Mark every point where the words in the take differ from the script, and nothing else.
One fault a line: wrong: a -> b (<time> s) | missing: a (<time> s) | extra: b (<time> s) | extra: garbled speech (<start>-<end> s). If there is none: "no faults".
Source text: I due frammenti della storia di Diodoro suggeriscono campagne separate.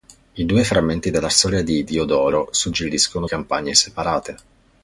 no faults